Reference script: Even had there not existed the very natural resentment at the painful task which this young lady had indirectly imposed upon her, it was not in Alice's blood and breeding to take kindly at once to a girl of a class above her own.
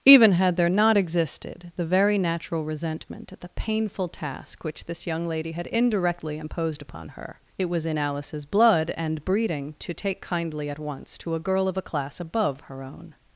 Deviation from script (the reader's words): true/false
true